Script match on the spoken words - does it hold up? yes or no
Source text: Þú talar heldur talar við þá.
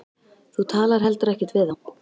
no